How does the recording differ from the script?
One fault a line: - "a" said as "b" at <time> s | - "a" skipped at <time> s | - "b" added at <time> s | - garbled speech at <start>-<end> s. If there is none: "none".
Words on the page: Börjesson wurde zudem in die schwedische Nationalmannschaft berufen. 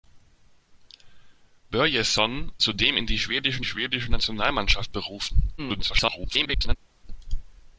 - "wurde" skipped at 2.5 s
- "schwedische" added at 3.6 s
- garbled speech at 5.6-6.8 s